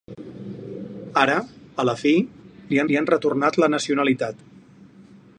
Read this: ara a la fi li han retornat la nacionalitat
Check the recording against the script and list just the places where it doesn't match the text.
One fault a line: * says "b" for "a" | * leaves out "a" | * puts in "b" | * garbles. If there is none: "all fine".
* puts in "li"